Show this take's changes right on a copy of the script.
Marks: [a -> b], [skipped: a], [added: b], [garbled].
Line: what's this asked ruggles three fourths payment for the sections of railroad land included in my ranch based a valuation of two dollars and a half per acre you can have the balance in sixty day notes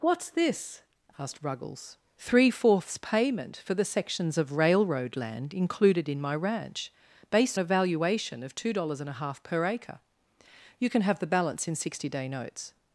what's this asked ruggles three fourths payment for the sections of railroad land included in my ranch based a valuation of two dollars and a half per acre you can have the balance in sixty day notes